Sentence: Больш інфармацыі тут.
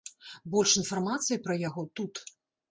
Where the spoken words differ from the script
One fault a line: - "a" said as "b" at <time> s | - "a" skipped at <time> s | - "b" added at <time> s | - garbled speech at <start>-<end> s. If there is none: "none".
- "пра яго" added at 1.4 s